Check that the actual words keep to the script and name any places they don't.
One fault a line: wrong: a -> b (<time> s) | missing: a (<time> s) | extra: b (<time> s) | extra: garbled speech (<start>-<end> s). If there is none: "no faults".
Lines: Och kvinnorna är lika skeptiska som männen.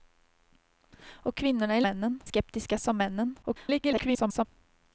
wrong: lika -> männen (1.8 s)
extra: garbled speech (3.4-4.5 s)